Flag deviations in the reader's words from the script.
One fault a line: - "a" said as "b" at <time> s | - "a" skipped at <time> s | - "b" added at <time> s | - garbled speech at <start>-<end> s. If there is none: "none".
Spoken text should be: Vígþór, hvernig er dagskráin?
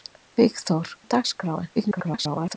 - "hvernig" skipped at 0.9 s
- garbled speech at 1.8-2.6 s